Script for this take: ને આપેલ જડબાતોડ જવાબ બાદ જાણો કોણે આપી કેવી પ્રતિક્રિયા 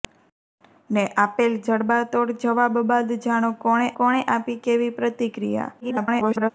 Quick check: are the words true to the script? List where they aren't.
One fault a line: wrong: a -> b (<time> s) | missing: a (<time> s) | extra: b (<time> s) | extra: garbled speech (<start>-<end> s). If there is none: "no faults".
extra: કોણે (4.0 s)
extra: garbled speech (5.8-6.5 s)